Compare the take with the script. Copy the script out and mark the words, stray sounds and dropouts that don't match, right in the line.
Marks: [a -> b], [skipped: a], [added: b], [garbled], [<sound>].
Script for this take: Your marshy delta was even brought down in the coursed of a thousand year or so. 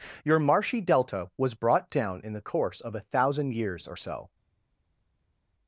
Your marshy delta was [skipped: even] brought down in the [coursed -> course] of a thousand [year -> years] or so.